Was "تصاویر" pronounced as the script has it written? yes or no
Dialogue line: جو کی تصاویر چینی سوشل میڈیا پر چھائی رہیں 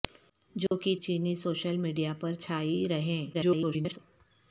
no